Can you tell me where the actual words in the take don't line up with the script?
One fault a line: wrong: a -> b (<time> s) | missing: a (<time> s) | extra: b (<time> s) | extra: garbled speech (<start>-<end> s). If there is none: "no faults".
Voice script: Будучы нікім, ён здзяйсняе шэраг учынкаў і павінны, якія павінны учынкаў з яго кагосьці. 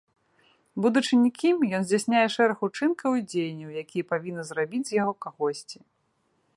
wrong: павінны -> дзеянняў (3.3 s)
wrong: учынкаў -> зрабіць (4.5 s)